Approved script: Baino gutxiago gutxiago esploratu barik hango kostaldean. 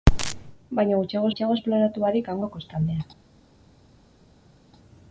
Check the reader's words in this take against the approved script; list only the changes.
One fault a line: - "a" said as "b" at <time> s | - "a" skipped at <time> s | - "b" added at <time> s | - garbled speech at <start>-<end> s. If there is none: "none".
none